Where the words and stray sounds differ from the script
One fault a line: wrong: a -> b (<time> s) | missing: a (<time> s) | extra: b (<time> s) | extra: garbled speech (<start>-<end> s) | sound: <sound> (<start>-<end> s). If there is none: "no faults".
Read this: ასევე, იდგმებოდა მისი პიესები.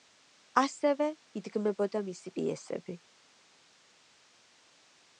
no faults